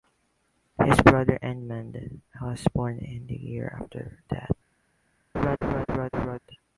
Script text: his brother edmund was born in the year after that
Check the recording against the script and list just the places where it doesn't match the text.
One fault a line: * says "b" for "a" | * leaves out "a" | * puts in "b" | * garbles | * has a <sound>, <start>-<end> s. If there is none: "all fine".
* has a laugh, 5.3-6.4 s